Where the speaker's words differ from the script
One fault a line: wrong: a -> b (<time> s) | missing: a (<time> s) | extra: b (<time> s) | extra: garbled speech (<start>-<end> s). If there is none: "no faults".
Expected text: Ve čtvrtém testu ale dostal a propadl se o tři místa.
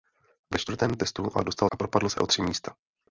no faults